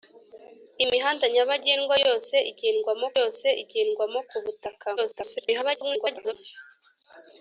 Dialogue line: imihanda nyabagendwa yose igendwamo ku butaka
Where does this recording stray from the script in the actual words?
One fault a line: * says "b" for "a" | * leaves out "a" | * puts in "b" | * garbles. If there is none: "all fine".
* puts in "yose igendwamo"
* garbles